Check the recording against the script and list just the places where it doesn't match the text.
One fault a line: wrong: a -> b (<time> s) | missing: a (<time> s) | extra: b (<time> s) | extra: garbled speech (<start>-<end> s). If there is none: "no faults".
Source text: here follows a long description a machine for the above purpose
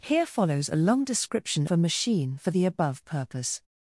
no faults